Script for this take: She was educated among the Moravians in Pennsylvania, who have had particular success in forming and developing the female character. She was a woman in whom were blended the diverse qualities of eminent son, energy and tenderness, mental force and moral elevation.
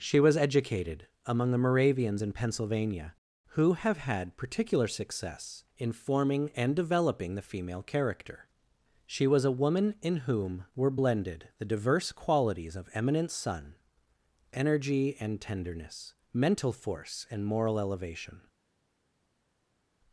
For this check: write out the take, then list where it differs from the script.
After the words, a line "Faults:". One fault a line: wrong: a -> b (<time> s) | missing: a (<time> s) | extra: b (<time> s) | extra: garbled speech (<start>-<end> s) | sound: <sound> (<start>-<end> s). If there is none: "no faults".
She was educated among the Moravians in Pennsylvania, who have had particular success in forming and developing the female character. She was a woman in whom were blended the diverse qualities of eminent son, energy and tenderness, mental force and moral elevation.
Faults:
no faults